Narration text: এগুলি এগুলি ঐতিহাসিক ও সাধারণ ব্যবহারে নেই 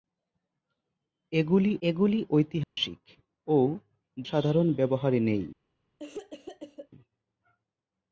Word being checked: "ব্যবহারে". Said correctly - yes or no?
yes